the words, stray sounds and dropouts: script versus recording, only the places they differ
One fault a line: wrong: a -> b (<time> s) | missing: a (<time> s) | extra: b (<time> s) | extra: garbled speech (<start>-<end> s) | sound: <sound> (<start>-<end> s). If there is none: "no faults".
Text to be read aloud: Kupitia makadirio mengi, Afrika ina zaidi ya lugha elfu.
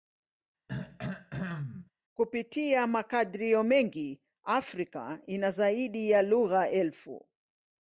sound: throat clearing (0.7-1.9 s)